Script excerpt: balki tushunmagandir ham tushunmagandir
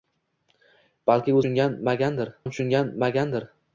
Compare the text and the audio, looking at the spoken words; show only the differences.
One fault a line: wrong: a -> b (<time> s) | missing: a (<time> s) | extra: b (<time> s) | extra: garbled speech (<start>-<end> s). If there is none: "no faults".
no faults